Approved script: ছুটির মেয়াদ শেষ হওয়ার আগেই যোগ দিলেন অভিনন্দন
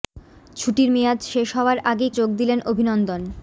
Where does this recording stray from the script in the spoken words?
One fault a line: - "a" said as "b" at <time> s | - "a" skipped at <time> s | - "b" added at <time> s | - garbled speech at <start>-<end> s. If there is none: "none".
none